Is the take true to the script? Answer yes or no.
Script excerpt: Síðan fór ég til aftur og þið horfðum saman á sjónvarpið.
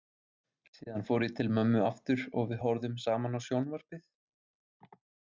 no